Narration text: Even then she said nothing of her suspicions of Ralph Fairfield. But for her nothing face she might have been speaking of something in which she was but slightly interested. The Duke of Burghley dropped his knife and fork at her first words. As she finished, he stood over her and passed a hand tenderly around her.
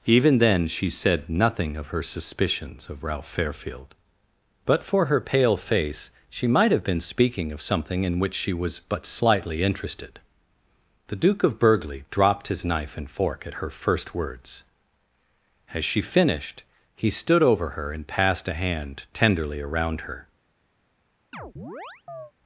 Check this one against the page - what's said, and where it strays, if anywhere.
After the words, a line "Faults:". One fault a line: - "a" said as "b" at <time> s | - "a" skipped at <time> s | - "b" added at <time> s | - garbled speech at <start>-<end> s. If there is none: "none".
Even then she said nothing of her suspicions of Ralph Fairfield. But for her pale face she might have been speaking of something in which she was but slightly interested. The Duke of Burghley dropped his knife and fork at her first words. As she finished, he stood over her and passed a hand tenderly around her.
Faults:
- "nothing" said as "pale" at 5.2 s